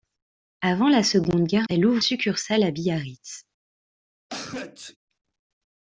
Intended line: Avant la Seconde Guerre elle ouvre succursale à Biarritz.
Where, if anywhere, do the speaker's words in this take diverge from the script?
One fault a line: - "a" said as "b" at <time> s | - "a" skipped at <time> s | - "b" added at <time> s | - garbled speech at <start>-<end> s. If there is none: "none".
none